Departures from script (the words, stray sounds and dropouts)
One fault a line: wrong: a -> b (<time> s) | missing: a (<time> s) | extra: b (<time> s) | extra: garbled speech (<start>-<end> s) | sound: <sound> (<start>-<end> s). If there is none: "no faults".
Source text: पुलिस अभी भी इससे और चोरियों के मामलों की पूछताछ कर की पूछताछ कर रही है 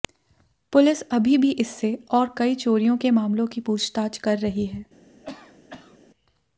extra: कई (2.4 s)
missing: की पूछताछ कर (4.4 s)
sound: cough (5.2-6.0 s)